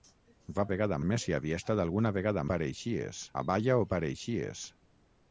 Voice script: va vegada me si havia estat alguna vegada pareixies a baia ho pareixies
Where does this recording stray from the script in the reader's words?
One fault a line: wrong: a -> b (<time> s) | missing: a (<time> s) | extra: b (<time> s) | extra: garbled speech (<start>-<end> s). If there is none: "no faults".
no faults